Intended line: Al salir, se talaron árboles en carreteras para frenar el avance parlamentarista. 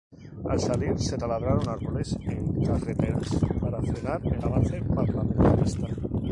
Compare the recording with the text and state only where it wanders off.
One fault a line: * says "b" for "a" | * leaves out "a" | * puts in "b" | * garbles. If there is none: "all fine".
all fine